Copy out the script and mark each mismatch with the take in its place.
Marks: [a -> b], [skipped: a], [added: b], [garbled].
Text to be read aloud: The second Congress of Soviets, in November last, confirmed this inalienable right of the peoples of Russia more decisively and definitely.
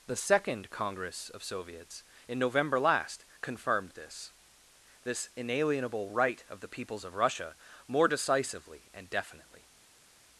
The second Congress of Soviets, in November last, confirmed this [added: this] inalienable right of the peoples of Russia more decisively and definitely.